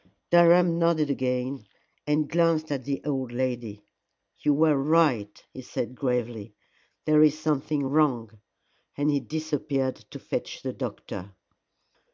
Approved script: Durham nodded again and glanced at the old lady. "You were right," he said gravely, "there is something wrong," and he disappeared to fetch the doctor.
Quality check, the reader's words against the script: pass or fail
pass